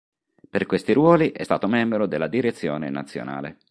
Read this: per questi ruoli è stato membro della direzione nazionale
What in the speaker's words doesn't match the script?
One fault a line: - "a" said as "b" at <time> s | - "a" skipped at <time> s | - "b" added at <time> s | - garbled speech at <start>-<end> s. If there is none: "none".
none